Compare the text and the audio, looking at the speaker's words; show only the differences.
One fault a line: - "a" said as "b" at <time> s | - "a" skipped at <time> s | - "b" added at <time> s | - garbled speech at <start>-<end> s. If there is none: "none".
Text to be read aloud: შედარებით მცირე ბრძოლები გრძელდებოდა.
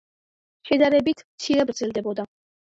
- "ბრძოლები" skipped at 1.7 s